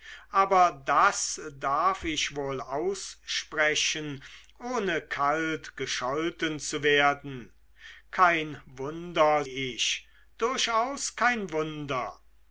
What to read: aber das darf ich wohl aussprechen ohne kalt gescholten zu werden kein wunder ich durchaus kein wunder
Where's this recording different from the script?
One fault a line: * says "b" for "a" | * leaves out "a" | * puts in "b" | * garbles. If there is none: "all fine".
all fine